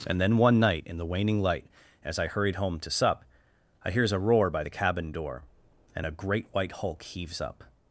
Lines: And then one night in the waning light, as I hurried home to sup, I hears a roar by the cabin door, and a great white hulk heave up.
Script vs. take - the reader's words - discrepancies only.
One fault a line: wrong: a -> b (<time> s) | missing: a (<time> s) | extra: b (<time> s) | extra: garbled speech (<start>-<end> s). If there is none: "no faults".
wrong: heave -> heaves (7.0 s)